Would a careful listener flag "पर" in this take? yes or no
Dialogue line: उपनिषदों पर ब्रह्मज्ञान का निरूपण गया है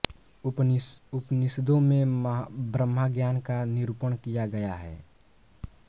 yes